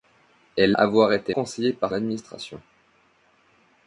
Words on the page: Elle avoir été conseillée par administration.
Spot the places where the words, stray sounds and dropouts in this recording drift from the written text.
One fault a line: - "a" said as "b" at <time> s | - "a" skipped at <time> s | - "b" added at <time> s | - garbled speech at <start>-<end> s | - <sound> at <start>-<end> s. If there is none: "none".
none